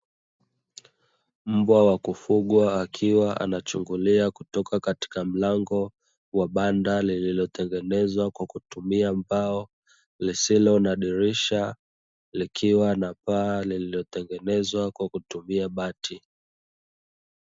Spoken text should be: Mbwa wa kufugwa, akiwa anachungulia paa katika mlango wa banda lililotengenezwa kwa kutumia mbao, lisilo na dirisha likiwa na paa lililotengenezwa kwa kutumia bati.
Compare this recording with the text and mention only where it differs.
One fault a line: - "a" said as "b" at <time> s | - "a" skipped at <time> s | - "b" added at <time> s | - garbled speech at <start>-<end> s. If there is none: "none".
- "paa" said as "kutoka" at 4.3 s